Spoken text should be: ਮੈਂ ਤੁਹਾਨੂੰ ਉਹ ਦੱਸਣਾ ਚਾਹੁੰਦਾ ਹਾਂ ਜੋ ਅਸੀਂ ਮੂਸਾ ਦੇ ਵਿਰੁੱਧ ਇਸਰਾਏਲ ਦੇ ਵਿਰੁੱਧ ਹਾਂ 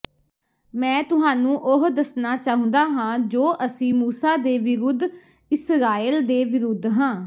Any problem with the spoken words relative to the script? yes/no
no